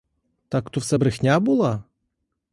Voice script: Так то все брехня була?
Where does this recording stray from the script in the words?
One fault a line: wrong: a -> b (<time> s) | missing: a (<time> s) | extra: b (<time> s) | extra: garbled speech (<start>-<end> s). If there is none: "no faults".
no faults